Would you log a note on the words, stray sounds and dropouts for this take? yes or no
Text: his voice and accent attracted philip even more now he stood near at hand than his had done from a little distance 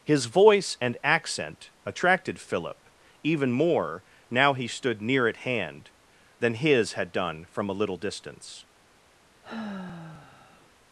yes